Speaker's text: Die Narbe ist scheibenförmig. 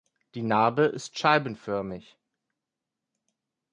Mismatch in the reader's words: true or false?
false